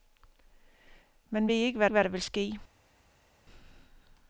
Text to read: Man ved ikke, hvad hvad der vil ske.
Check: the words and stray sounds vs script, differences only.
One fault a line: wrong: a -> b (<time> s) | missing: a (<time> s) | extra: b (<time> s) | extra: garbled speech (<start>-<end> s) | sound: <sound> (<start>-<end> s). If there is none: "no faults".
no faults